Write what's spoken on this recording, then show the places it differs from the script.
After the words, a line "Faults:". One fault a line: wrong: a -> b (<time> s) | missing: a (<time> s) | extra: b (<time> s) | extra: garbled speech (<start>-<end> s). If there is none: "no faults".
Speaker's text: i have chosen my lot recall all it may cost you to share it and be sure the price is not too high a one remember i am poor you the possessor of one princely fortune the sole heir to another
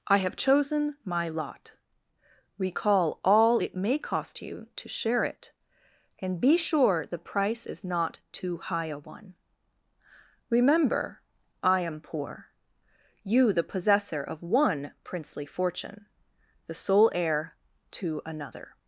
i have chosen my lot recall all it may cost you to share it and be sure the price is not too high a one remember i am poor you the possessor of one princely fortune the sole heir to another
Faults:
no faults